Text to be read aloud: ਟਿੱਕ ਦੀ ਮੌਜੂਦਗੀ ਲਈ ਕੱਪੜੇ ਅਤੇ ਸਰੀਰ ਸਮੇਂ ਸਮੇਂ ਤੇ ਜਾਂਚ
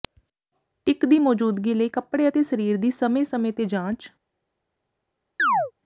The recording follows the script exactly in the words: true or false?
false